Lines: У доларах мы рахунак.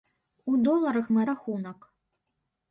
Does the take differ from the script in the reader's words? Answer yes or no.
no